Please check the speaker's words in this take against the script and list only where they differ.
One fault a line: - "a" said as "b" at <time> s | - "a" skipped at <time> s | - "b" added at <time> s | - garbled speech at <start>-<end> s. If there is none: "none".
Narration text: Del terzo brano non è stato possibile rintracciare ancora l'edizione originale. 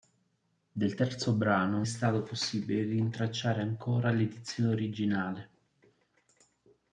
- "non" skipped at 1.8 s